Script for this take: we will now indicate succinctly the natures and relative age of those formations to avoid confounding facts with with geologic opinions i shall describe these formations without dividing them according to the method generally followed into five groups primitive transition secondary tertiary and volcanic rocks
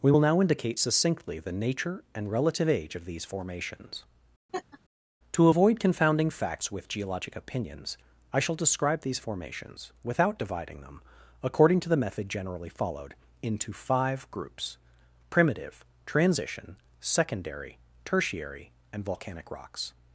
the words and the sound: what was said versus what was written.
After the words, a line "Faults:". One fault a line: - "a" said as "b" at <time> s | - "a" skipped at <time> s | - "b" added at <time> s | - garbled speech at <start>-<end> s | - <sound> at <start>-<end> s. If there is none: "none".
we will now indicate succinctly the nature and relative age of these formations to avoid confounding facts with geologic opinions i shall describe these formations without dividing them according to the method generally followed into five groups primitive transition secondary tertiary and volcanic rocks
Faults:
- "natures" said as "nature" at 1.5 s
- "those" said as "these" at 3.0 s
- laugh at 4.5-4.8 s
- "with" skipped at 6.9 s